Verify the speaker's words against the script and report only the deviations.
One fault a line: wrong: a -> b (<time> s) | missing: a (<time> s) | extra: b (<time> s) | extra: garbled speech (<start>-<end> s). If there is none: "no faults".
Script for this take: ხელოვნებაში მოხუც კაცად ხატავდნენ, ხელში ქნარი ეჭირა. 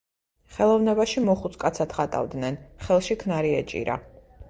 no faults